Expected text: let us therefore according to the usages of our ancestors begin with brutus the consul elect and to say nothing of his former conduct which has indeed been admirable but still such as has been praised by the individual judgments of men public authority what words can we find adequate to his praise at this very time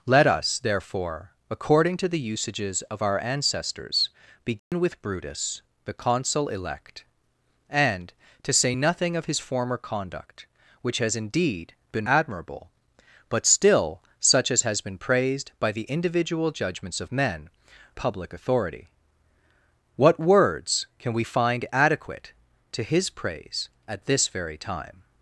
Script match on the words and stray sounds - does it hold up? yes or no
no